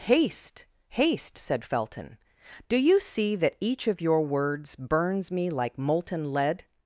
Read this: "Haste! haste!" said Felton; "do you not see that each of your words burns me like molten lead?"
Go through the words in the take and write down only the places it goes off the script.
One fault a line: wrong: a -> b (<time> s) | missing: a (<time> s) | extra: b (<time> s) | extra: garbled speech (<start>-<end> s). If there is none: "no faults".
missing: not (3.0 s)